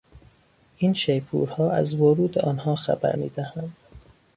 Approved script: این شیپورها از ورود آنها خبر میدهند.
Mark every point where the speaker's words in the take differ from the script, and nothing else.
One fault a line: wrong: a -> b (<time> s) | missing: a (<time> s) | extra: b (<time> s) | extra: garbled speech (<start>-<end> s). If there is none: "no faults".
no faults